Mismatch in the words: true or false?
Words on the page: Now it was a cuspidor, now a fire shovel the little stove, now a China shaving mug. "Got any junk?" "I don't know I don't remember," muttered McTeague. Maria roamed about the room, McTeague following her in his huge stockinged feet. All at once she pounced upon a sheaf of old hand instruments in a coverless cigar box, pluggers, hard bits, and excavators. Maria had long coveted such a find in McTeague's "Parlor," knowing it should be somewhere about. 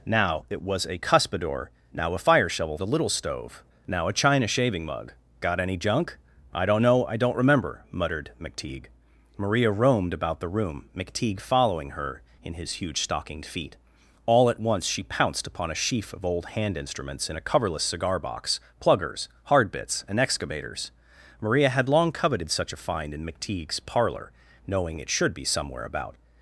false